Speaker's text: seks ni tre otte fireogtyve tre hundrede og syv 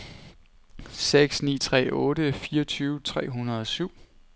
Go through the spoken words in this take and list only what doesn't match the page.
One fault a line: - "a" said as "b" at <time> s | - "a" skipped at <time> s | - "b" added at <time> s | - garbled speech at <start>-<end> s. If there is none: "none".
none